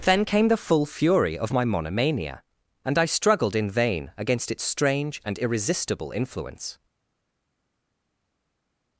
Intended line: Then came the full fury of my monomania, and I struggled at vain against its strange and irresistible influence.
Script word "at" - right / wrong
wrong